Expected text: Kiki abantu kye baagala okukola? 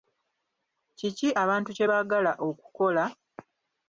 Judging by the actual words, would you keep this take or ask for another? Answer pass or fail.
pass